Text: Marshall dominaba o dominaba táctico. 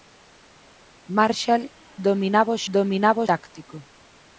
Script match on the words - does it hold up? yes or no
yes